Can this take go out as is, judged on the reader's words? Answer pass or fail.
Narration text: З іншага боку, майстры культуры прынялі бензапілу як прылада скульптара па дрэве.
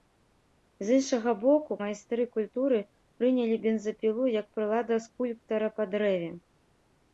pass